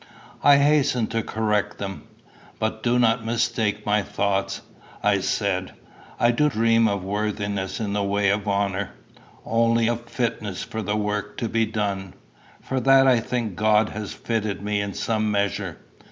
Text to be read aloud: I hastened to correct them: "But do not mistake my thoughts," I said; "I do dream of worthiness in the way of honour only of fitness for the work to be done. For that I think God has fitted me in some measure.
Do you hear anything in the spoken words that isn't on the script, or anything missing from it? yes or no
no